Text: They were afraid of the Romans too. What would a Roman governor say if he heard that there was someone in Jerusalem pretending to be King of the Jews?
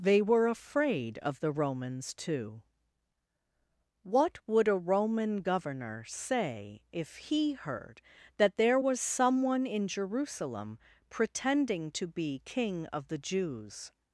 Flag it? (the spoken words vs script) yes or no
no